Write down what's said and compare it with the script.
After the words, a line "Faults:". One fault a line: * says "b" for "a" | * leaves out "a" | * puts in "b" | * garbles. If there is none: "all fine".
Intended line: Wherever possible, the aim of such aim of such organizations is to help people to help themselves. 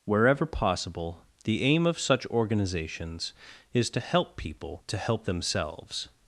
Wherever possible, the aim of such organizations is to help people to help themselves.
Faults:
* leaves out "aim of such"